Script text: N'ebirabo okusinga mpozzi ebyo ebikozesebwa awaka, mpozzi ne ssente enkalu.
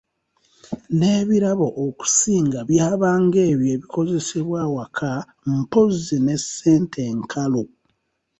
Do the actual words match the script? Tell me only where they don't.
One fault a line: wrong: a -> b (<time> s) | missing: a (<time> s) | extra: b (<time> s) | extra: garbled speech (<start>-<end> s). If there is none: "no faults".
wrong: mpozzi -> byabanga (2.7 s)